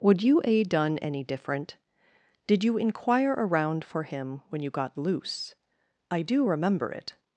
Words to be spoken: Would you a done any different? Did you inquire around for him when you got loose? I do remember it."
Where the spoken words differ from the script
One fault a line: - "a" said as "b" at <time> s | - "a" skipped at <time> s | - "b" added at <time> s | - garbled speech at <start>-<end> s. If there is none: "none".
none